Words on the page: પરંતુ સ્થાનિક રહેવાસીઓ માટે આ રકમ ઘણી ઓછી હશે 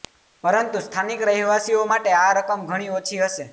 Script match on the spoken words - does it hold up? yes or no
yes